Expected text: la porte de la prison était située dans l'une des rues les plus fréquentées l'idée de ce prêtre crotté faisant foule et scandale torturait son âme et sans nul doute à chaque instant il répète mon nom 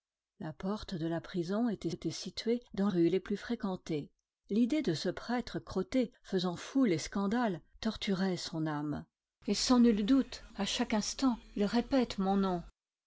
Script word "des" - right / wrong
wrong